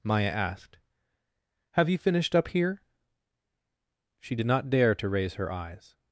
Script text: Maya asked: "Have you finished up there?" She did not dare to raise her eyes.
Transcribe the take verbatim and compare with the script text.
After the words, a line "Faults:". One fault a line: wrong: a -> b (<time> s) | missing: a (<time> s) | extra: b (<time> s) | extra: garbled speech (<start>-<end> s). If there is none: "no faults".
Maya asked: "Have you finished up here?" She did not dare to raise her eyes.
Faults:
wrong: there -> here (2.5 s)